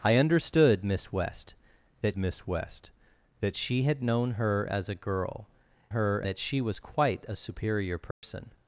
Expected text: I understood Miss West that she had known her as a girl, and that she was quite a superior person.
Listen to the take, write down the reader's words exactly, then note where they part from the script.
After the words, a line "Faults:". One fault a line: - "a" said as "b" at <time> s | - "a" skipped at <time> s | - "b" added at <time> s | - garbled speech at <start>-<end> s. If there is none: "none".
I understood Miss West that Miss West that she had known her as a girl, her that she was quite a superior person.
Faults:
- "Miss West that" added at 2.2 s
- "and" said as "her" at 5.9 s